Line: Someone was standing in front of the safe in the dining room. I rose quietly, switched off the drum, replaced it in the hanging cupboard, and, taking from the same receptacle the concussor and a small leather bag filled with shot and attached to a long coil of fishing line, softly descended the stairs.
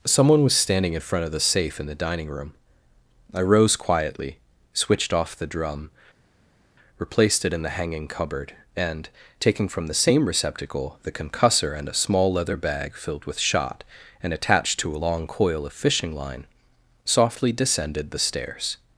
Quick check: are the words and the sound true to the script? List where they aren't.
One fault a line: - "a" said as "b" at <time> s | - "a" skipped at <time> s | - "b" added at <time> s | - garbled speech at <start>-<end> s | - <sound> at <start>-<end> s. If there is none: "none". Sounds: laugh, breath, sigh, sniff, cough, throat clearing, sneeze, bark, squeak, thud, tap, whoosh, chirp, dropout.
none